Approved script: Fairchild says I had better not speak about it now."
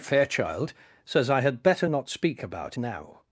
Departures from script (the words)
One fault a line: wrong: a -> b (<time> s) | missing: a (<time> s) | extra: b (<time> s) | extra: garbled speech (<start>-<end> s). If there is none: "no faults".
missing: it (2.8 s)